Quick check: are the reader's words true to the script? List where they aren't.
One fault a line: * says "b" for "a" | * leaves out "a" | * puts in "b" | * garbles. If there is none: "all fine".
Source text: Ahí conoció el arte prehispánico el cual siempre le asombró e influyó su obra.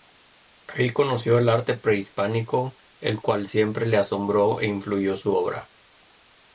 all fine